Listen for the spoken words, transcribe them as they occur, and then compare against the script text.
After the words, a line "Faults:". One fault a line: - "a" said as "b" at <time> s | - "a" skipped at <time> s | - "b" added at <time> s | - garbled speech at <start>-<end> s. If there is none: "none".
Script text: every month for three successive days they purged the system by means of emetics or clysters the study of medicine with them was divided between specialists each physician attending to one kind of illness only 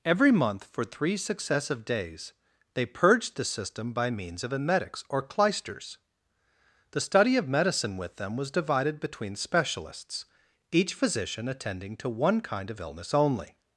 every month for three successive days they purged the system by means of emetics or clysters the study of medicine with them was divided between specialists each physician attending to one kind of illness only
Faults:
none